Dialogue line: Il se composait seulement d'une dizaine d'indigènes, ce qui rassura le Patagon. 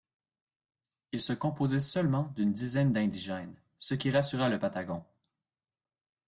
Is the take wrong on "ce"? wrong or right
right